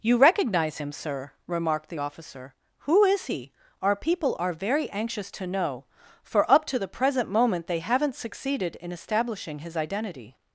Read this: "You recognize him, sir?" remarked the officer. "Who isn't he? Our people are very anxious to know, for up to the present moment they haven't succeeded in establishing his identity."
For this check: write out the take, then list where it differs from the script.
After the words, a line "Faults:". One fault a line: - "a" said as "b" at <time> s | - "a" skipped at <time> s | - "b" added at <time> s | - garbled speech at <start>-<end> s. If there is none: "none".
"You recognize him, sir?" remarked the officer. "Who is he? Our people are very anxious to know, for up to the present moment they haven't succeeded in establishing his identity."
Faults:
- "isn't" said as "is" at 3.0 s